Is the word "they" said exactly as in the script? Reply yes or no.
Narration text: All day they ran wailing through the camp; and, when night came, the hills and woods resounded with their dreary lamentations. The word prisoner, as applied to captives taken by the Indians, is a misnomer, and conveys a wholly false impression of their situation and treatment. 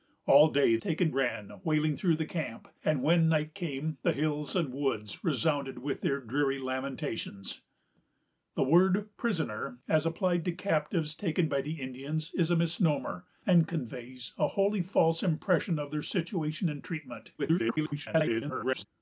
no